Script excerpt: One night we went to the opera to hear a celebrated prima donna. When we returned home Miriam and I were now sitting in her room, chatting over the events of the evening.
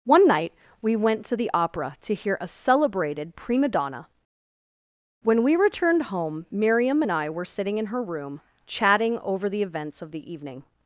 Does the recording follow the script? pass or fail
fail